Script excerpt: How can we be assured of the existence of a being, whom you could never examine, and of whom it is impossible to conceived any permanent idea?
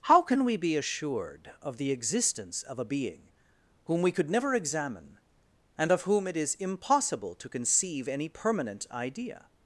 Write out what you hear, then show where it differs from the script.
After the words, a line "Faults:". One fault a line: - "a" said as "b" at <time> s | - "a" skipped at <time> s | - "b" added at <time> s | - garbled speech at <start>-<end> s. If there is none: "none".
How can we be assured of the existence of a being, whom we could never examine, and of whom it is impossible to conceive any permanent idea?
Faults:
- "you" said as "we" at 4.0 s
- "conceived" said as "conceive" at 7.5 s